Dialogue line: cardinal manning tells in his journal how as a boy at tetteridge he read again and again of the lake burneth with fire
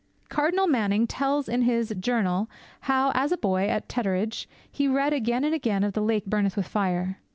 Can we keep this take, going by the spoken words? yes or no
yes